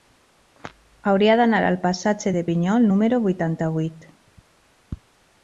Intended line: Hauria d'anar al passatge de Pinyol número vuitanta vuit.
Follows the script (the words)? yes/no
yes